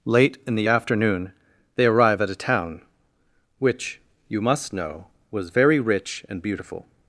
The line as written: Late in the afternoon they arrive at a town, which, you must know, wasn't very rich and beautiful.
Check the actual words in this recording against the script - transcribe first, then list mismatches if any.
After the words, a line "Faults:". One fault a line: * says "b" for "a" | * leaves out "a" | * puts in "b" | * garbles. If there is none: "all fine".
Late in the afternoon they arrive at a town, which, you must know, was very rich and beautiful.
Faults:
* says "was" for "wasn't"